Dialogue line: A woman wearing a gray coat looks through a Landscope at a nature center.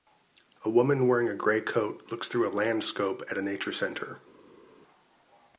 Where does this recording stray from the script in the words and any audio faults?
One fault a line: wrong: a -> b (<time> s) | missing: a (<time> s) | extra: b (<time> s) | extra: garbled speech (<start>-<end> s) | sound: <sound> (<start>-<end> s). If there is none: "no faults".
no faults